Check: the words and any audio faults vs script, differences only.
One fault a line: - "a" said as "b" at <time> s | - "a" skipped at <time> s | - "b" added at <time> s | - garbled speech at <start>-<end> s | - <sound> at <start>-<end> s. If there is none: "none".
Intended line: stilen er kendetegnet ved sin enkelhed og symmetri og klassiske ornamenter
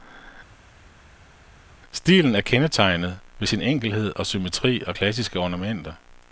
none